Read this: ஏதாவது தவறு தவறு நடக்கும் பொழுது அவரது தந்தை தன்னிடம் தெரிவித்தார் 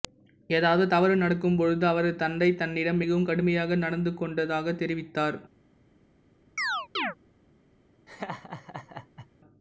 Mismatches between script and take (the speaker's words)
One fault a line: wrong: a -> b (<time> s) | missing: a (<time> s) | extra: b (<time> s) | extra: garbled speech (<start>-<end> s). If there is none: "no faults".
missing: தவறு (1.2 s)
extra: மிகவும் கடுமையாக நடந்துகொண்டதாகத் (3.0 s)